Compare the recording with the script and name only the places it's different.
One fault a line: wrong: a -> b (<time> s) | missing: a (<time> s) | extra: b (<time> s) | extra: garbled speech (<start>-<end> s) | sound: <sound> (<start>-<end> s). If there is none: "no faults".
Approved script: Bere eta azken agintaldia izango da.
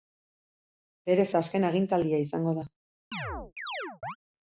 sound: chirp (3.1-4.2 s)